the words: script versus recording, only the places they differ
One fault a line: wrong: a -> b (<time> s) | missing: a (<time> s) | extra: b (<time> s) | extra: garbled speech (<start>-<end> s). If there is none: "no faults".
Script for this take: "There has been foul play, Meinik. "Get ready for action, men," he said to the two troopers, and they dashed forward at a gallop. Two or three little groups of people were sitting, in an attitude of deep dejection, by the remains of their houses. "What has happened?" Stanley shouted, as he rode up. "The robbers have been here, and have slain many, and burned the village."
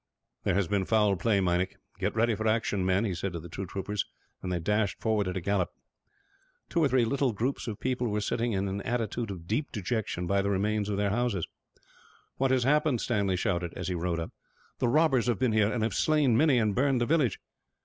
no faults